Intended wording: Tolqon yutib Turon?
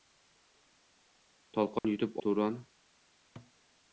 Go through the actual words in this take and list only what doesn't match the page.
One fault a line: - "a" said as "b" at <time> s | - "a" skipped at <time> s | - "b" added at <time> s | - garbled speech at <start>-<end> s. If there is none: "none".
none